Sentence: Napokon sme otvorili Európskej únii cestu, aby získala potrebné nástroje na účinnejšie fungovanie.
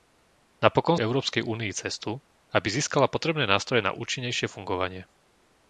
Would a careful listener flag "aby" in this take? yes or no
no